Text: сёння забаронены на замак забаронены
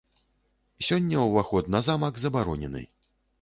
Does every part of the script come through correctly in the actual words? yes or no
no